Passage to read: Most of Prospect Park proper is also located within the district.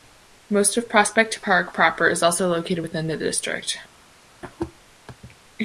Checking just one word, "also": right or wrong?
right